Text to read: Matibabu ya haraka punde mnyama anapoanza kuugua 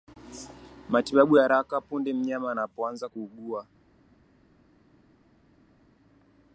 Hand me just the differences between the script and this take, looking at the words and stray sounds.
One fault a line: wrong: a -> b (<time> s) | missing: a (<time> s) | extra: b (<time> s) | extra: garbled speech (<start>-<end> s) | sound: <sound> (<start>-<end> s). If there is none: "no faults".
no faults